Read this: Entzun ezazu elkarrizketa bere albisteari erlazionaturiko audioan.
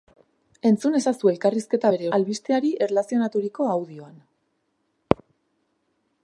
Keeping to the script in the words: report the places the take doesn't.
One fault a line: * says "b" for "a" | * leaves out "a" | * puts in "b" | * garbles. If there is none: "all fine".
all fine